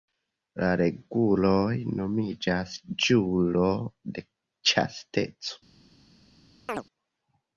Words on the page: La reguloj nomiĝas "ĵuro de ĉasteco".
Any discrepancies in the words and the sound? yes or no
yes